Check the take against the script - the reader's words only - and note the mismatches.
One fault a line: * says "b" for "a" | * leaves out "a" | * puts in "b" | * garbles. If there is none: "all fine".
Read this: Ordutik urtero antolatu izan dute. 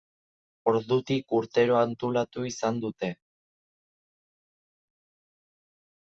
all fine